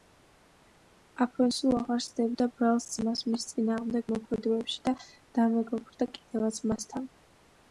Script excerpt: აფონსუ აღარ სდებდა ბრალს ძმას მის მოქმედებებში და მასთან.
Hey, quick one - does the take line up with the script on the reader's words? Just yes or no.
no